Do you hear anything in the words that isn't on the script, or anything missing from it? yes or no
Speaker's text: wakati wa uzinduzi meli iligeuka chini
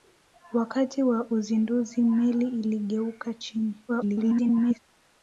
yes